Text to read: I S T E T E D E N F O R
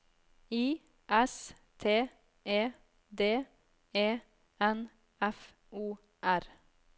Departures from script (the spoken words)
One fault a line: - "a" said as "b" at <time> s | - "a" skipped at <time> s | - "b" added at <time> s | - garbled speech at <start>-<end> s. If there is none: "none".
- "T E" skipped at 2.7 s